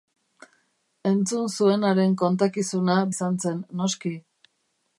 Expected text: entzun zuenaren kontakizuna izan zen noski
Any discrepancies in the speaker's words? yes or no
no